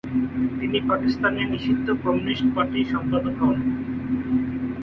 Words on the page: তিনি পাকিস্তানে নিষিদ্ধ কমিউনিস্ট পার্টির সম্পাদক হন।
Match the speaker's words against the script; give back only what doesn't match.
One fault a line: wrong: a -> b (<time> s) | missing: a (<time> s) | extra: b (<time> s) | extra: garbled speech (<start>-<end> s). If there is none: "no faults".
no faults